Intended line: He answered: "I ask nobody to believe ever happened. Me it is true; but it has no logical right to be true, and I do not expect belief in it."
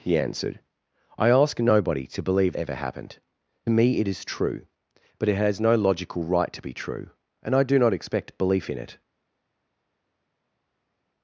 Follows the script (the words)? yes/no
yes